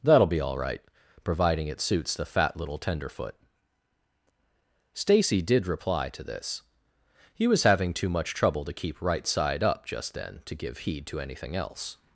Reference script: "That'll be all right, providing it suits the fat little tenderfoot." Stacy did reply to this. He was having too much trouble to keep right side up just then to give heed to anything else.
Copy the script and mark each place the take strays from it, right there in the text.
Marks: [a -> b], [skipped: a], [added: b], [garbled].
"That'll be all right, providing it suits the fat little tenderfoot." Stacy did reply to this. He was having too much trouble to keep right side up just then to give heed to anything else.